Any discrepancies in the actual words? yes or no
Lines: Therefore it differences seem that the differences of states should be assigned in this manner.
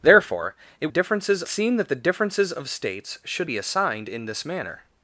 no